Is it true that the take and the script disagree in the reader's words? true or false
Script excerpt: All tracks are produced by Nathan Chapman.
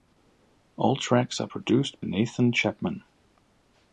true